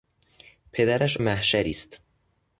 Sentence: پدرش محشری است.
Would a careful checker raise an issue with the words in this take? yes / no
no